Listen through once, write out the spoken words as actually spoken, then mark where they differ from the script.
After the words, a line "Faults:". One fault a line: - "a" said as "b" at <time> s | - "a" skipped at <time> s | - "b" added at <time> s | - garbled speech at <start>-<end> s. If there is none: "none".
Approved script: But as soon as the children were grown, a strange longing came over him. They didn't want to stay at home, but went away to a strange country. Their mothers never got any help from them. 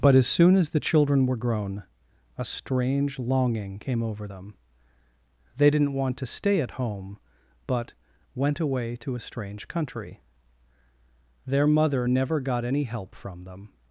But as soon as the children were grown, a strange longing came over them. They didn't want to stay at home, but went away to a strange country. Their mother never got any help from them.
Faults:
- "him" said as "them" at 4.2 s
- "mothers" said as "mother" at 11.7 s